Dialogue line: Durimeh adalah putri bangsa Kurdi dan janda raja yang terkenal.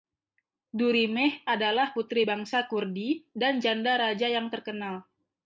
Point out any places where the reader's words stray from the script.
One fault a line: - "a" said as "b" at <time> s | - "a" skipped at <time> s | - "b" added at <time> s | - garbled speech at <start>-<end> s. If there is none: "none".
none